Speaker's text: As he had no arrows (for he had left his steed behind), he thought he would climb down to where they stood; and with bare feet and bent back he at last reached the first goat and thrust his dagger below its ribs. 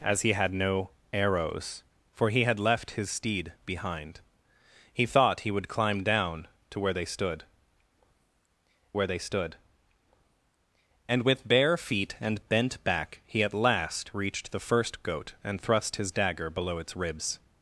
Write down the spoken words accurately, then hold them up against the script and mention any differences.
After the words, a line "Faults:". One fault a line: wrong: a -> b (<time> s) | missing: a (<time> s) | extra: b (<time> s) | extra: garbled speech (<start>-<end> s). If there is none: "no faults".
As he had no arrows (for he had left his steed behind), he thought he would climb down to where they stood where they stood; and with bare feet and bent back he at last reached the first goat and thrust his dagger below its ribs.
Faults:
extra: where they stood (8.9 s)